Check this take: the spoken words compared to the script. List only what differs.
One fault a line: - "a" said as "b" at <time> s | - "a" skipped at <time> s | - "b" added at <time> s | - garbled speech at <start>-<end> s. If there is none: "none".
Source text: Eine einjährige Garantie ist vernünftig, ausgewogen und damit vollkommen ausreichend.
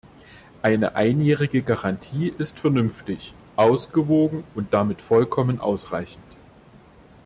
none